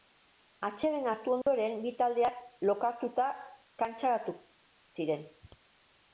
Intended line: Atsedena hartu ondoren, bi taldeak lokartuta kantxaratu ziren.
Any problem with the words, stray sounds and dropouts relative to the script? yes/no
yes